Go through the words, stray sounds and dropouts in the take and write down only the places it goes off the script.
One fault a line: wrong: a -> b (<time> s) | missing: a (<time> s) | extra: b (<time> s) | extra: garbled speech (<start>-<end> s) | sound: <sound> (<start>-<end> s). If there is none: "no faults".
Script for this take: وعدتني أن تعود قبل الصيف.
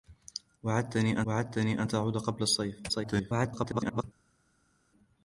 extra: وعدتني (1.2 s)
extra: garbled speech (2.9-4.0 s)